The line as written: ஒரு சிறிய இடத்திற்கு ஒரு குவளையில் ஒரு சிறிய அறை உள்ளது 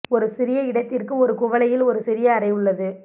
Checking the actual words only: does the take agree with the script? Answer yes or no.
yes